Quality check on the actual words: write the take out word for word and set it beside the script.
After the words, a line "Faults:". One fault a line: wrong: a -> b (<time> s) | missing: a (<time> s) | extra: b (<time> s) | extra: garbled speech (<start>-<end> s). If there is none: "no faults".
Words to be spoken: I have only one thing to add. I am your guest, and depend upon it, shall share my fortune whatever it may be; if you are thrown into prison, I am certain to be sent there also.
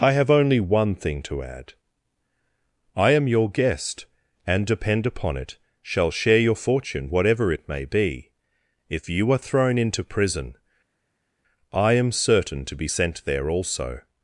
I have only one thing to add. I am your guest, and depend upon it, shall share your fortune whatever it may be; if you are thrown into prison, I am certain to be sent there also.
Faults:
wrong: my -> your (6.4 s)